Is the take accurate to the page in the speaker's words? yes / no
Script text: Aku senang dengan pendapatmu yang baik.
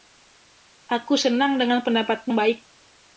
no